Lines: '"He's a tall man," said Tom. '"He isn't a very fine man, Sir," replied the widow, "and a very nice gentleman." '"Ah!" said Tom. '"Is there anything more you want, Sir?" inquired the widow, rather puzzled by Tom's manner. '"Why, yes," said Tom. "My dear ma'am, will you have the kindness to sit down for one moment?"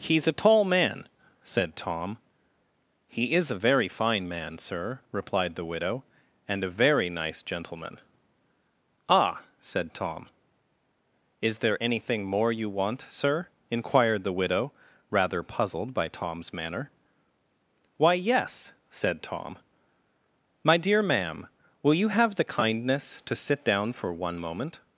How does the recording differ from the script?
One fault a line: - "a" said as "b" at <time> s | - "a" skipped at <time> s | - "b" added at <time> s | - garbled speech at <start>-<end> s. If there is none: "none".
- "isn't" said as "is" at 3.3 s